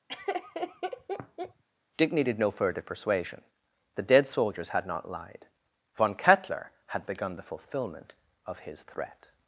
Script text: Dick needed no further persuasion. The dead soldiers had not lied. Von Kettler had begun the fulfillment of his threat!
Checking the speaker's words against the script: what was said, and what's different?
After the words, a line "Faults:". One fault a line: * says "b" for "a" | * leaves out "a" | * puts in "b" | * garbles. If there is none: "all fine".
Dick needed no further persuasion. The dead soldiers had not lied. Von Kettler had begun the fulfillment of his threat!
Faults:
all fine